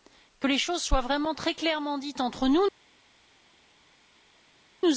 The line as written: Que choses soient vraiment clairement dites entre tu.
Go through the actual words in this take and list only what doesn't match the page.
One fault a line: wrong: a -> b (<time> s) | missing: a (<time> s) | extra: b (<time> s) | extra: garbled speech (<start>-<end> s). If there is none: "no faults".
extra: les (0.4 s)
extra: très (1.3 s)
wrong: tu -> nous (2.5 s)